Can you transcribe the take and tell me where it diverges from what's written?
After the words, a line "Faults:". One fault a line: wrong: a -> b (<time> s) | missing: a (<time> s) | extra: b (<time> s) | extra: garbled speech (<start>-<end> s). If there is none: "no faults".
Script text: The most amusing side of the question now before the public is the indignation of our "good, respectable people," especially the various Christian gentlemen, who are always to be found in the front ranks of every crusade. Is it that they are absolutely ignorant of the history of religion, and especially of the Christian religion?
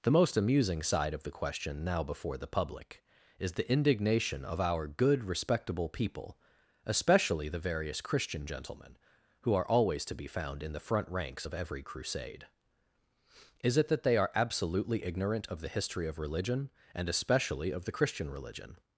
The most amusing side of the question now before the public is the indignation of our "good, respectable people," especially the various Christian gentlemen, who are always to be found in the front ranks of every crusade. Is it that they are absolutely ignorant of the history of religion, and especially of the Christian religion?
Faults:
no faults